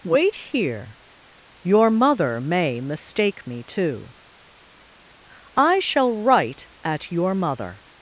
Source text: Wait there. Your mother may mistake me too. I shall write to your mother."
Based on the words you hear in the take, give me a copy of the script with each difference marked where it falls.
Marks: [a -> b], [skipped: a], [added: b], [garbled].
Wait [there. -> here] Your mother may mistake me too. I shall write [to -> at] your mother."